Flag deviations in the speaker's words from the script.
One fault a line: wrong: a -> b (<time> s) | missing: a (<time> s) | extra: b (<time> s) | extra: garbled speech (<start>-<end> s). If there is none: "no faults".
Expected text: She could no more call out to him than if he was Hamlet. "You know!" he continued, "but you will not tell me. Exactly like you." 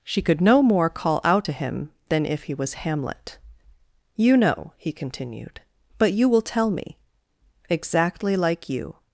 missing: not (6.4 s)